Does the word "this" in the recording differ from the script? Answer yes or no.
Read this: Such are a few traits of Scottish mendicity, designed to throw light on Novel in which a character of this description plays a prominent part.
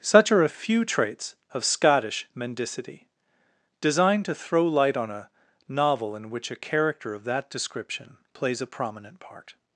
yes